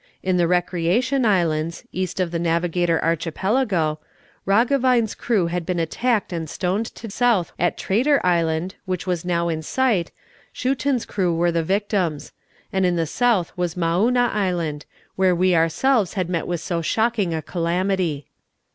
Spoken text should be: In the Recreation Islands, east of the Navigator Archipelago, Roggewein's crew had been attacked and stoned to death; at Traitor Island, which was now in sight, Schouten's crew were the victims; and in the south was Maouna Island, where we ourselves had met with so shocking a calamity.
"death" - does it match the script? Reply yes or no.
no